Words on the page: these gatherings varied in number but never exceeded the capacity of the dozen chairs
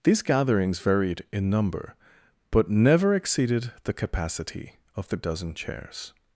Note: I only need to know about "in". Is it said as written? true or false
true